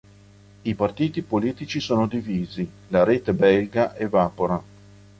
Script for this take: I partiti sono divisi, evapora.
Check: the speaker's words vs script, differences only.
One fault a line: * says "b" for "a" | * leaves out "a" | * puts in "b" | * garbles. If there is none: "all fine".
* puts in "politici"
* puts in "la rete belga"